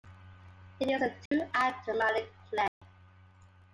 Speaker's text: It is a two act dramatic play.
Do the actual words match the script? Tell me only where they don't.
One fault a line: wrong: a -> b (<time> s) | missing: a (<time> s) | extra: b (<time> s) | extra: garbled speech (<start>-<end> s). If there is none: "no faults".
no faults